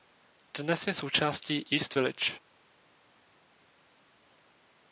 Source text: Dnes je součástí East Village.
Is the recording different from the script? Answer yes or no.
no